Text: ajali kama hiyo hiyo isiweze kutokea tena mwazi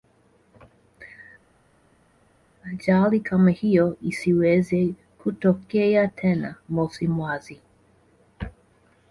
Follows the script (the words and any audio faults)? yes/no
no